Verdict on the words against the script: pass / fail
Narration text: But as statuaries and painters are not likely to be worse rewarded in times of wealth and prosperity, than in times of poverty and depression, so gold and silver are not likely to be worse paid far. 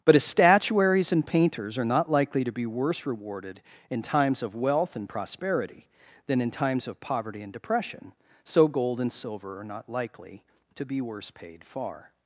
pass